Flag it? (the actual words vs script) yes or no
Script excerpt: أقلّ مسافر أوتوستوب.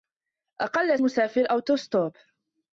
no